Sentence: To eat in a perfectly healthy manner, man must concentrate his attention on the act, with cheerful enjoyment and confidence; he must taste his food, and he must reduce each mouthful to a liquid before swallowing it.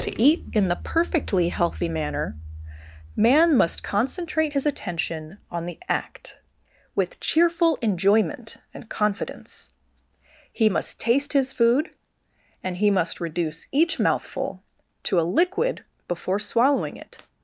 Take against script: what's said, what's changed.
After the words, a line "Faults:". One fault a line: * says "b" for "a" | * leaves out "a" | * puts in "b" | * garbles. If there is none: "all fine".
To eat in the perfectly healthy manner, man must concentrate his attention on the act, with cheerful enjoyment and confidence; he must taste his food, and he must reduce each mouthful to a liquid before swallowing it.
Faults:
* says "the" for "a"